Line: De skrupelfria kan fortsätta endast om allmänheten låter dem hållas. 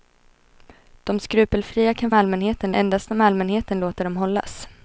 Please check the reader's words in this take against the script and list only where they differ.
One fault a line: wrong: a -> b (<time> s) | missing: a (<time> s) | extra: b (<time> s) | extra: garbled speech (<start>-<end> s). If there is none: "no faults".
wrong: fortsätta -> allmänheten (2.1 s)